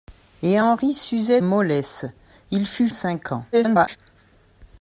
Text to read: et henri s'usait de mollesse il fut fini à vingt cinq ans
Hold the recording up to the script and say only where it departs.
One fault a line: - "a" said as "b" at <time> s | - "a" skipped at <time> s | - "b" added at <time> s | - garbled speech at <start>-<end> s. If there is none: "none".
- "de" skipped at 1.4 s
- "fini à vingt" skipped at 2.9 s
- garbled speech at 3.5-4.0 s